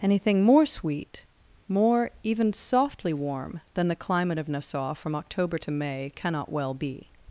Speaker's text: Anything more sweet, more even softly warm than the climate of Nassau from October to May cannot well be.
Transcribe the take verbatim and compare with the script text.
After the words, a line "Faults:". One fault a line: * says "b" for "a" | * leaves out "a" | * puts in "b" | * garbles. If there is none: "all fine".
Anything more sweet, more even softly warm than the climate of Nassau from October to May cannot well be.
Faults:
all fine